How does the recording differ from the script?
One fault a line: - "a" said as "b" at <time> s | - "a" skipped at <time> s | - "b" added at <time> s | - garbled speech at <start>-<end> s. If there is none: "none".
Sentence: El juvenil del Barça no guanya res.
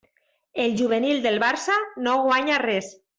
none